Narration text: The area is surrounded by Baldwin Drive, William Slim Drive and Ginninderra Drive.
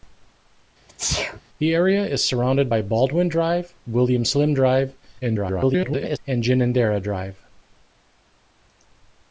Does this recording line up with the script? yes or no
no